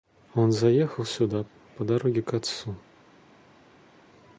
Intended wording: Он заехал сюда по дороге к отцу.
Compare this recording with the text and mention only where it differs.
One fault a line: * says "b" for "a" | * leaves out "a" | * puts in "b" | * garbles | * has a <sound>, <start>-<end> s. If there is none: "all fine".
all fine